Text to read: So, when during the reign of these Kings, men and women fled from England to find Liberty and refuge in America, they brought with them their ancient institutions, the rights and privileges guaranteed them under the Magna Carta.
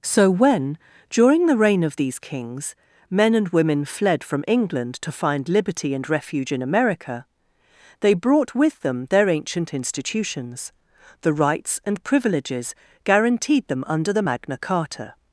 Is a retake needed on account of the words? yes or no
no